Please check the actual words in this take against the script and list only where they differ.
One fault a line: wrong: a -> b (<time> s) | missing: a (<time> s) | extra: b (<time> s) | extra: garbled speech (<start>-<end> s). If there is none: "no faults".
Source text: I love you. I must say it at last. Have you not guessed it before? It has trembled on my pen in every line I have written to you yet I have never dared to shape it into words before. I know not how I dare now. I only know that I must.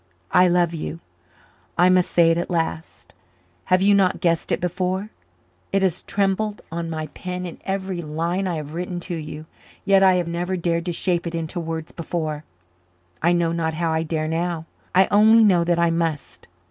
no faults